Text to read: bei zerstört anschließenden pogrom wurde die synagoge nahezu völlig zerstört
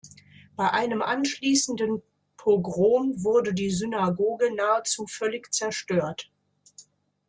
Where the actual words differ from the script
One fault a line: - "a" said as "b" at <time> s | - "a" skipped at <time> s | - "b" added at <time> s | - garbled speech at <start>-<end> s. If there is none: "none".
- "zerstört" said as "einem" at 0.7 s